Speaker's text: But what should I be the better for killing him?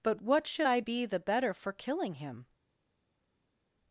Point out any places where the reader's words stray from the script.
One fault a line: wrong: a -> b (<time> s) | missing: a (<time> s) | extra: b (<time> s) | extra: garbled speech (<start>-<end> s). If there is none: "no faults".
no faults